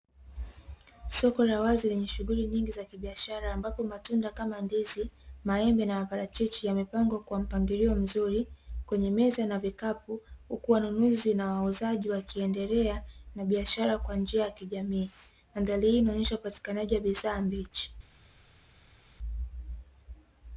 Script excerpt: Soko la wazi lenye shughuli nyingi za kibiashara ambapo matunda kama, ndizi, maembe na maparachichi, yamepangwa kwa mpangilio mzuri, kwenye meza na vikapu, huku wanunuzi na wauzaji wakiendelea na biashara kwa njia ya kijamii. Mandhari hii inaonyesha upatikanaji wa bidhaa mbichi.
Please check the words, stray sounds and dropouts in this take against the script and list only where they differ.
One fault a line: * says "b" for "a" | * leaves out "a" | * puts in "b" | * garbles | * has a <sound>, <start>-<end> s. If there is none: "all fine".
all fine